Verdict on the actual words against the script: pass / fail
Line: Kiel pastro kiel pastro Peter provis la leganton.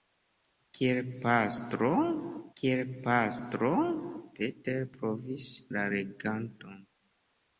pass